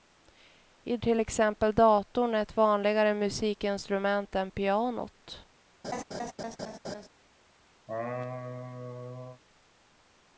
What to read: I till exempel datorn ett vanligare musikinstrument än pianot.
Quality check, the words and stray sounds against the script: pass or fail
fail